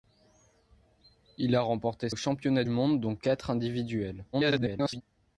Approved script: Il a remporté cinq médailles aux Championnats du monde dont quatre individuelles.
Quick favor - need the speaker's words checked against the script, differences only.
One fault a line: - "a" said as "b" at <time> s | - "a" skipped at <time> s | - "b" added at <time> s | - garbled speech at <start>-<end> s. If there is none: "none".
- "cinq médailles" skipped at 2.1 s
- "du" skipped at 2.6 s
- garbled speech at 4.3-5.0 s